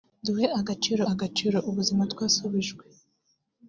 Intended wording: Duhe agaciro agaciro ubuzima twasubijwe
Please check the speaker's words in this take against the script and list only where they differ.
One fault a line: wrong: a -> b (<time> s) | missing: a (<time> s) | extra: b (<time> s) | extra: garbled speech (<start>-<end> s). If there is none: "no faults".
no faults